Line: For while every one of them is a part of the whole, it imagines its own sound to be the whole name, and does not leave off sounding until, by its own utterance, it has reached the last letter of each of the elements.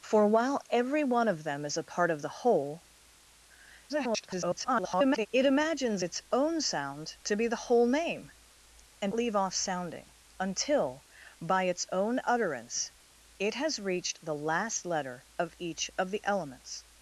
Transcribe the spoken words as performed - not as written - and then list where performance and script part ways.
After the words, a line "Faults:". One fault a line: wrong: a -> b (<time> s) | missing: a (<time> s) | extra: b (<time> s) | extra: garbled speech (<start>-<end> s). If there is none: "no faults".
For while every one of them is a part of the whole, [garbled] it imagines its own sound to be the whole name, and leave off sounding until, by its own utterance, it has reached the last letter of each of the elements.
Faults:
extra: garbled speech (3.9-5.3 s)
missing: does not (9.1 s)